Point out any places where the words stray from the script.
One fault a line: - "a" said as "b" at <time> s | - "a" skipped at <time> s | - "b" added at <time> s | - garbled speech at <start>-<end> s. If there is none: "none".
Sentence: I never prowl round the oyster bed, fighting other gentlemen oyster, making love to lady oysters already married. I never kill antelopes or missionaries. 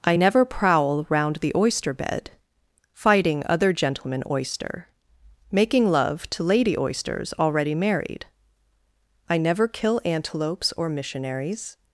none